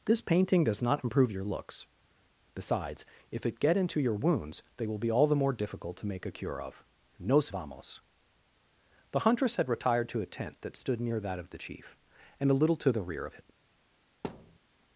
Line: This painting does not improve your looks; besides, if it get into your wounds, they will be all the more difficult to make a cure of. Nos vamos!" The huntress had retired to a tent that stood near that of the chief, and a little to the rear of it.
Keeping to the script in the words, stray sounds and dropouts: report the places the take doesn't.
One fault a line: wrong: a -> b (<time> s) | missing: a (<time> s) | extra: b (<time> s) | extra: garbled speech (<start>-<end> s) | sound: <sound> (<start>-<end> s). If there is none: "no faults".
sound: thud (14.2-14.6 s)